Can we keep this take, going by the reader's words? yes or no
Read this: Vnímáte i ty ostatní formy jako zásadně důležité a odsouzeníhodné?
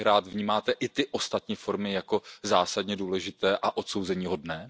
yes